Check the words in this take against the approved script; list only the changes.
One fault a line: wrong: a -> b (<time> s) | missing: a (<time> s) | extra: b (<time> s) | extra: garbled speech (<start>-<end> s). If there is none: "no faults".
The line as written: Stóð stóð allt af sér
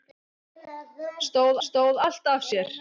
no faults